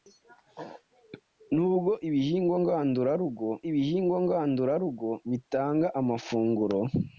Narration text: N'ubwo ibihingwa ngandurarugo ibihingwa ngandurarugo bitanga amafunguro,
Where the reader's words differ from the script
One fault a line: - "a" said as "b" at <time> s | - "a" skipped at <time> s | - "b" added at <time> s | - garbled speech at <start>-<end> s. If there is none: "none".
none